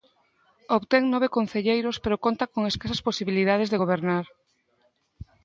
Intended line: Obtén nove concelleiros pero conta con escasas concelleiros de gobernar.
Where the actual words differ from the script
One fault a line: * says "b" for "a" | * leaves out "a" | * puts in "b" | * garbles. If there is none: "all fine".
* says "posibilidades" for "concelleiros"